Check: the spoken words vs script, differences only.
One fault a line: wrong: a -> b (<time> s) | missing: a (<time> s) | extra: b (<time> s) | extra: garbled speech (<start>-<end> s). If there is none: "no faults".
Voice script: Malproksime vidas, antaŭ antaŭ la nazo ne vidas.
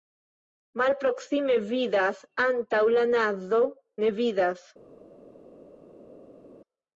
missing: antaŭ (2.8 s)